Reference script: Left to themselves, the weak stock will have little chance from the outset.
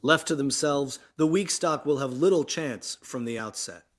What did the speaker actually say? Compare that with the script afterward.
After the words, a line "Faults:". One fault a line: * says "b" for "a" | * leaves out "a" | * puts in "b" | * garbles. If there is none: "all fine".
Left to themselves, the weak stock will have little chance from the outset.
Faults:
all fine